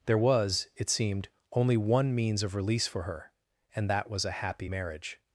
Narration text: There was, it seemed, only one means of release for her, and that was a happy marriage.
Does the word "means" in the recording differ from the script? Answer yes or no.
no